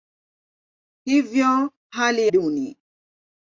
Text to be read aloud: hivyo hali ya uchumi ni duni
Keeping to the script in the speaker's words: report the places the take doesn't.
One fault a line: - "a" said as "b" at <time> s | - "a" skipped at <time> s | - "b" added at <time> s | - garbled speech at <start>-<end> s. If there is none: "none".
- "ya uchumi ni" skipped at 2.3 s